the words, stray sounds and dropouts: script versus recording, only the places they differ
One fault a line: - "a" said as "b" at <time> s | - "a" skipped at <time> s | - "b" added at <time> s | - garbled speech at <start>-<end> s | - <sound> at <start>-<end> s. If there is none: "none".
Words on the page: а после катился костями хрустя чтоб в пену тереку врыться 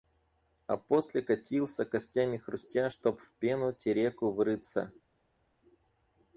none